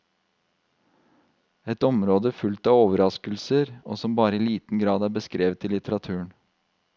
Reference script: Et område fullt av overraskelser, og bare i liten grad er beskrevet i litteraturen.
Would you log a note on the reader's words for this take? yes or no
yes